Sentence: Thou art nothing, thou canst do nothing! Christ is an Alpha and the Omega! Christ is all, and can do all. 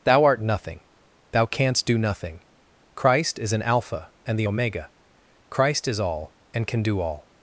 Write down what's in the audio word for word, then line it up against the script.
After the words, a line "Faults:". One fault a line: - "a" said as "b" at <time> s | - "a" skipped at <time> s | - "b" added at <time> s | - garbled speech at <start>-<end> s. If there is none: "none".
Thou art nothing, thou canst do nothing! Christ is an Alpha and the Omega! Christ is all, and can do all.
Faults:
none